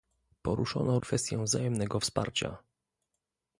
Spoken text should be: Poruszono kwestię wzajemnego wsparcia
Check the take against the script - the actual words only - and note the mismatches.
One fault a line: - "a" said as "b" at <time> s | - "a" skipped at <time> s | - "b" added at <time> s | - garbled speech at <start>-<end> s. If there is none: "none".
none